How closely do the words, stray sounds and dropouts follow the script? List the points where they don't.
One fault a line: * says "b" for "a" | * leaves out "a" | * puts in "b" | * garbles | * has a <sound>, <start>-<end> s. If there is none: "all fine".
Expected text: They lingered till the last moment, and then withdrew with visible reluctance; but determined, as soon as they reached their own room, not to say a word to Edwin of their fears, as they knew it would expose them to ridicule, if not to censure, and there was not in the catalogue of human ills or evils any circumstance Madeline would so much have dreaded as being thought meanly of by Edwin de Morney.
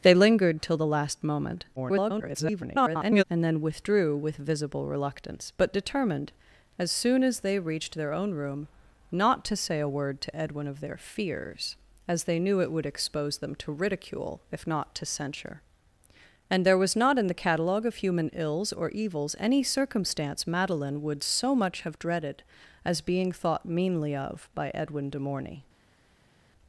* garbles